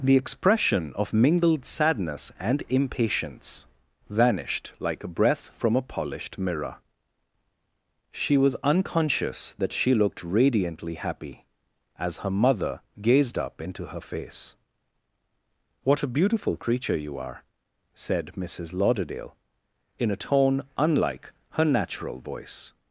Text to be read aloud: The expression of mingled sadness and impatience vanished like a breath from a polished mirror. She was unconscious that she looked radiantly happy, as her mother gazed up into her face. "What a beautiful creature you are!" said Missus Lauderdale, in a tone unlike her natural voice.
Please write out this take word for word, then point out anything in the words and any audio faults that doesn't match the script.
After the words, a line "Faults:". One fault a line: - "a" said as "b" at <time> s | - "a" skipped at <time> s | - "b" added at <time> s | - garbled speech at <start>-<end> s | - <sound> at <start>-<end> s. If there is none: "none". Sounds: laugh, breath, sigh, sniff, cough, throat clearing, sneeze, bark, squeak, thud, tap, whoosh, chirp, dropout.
The expression of mingled sadness and impatience vanished like a breath from a polished mirror. She was unconscious that she looked radiantly happy, as her mother gazed up into her face. "What a beautiful creature you are!" said Missus Lauderdale, in a tone unlike her natural voice.
Faults:
none